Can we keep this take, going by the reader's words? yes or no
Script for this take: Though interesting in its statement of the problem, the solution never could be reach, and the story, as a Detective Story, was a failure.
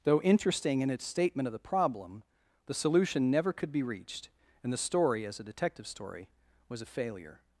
no